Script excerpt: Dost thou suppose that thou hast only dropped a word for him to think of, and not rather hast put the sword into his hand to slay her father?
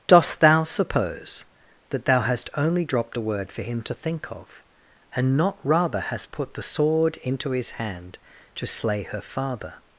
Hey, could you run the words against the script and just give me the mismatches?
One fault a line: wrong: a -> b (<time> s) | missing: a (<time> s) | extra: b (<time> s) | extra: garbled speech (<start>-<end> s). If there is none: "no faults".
no faults